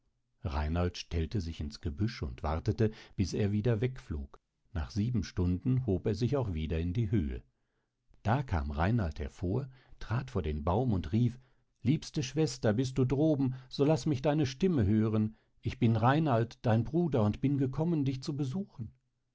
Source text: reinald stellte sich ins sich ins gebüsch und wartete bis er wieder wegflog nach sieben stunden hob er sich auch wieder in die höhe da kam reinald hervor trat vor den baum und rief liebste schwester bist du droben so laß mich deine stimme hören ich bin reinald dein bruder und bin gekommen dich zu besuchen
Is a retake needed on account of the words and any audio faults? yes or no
yes